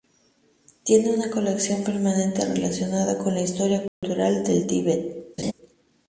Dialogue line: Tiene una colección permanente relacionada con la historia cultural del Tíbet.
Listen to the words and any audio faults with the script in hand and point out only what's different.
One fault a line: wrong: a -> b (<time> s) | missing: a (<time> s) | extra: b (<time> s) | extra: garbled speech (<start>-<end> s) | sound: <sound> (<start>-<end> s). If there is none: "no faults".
sound: dropout (3.9-4.0 s)
sound: laugh (5.4-5.5 s)